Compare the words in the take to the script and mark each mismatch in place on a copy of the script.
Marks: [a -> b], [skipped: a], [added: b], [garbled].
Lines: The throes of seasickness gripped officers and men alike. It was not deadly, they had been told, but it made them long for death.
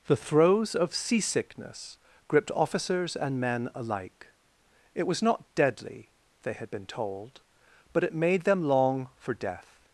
The throes of seasickness gripped officers and men alike. It was not deadly, they had been told, but it made them long for death.